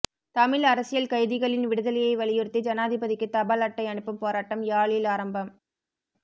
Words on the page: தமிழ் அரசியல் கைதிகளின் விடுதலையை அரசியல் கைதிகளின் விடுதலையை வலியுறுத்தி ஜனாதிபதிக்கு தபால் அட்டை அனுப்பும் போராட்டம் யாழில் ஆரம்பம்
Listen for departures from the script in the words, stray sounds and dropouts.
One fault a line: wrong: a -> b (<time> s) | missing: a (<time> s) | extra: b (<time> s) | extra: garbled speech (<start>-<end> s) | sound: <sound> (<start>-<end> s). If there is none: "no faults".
missing: அரசியல் கைதிகளின் விடுதலையை (2.1 s)